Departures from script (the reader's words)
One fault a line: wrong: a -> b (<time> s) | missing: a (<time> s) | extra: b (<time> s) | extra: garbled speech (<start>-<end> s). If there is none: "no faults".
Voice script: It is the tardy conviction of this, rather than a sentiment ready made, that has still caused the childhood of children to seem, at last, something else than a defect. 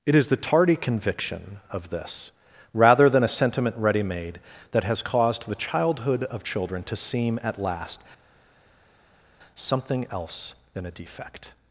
missing: still (5.0 s)